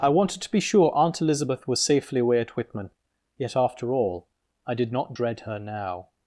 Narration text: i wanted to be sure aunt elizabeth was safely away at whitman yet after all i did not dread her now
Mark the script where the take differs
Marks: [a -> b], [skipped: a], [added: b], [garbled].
i wanted to be sure aunt elizabeth was safely away at whitman yet after all i did not dread her now